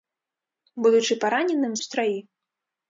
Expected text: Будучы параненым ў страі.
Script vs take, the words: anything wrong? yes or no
no